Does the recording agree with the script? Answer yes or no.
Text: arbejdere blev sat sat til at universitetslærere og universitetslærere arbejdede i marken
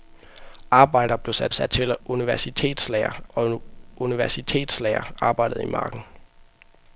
yes